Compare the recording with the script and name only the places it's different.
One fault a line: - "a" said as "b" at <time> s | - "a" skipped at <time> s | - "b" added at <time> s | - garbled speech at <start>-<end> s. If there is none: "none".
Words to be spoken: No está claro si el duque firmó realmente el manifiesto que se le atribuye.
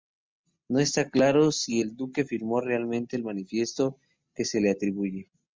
none